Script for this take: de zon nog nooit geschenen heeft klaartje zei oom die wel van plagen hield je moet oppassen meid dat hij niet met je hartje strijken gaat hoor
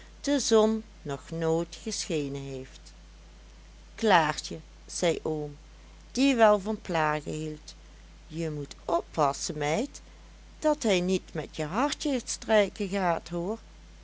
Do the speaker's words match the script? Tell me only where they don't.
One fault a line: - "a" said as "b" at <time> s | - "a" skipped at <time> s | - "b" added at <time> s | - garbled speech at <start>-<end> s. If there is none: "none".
none